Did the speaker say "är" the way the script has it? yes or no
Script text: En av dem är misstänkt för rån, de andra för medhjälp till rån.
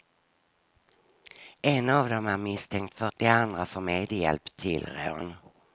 yes